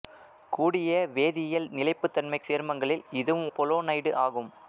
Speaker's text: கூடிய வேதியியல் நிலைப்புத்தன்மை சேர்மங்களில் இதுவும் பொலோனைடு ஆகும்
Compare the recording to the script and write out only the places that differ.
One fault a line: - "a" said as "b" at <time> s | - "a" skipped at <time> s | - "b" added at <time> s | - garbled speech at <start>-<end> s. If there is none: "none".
none